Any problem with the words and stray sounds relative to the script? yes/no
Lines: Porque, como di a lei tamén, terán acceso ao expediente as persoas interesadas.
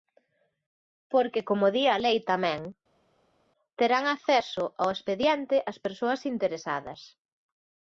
no